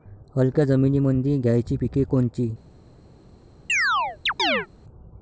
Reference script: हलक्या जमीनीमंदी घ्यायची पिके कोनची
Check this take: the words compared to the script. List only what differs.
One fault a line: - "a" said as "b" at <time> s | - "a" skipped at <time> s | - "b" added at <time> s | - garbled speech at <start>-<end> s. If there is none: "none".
none